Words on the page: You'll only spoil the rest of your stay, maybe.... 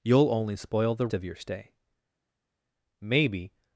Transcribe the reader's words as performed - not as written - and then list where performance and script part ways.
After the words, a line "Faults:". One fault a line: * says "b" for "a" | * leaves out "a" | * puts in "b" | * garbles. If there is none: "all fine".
You'll only spoil the of your stay, maybe....
Faults:
* leaves out "rest"